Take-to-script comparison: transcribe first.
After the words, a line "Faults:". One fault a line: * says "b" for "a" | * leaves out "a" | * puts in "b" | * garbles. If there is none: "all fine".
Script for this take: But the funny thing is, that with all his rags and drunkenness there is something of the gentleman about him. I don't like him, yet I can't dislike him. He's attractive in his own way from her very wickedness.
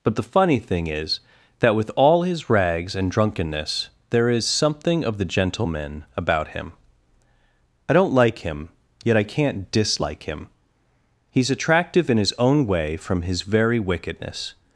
But the funny thing is, that with all his rags and drunkenness there is something of the gentleman about him. I don't like him, yet I can't dislike him. He's attractive in his own way from his very wickedness.
Faults:
* says "his" for "her"